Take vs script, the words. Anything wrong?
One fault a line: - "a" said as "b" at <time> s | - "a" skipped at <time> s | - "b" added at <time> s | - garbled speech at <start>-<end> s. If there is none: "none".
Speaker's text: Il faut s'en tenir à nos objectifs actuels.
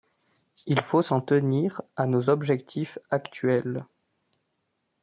none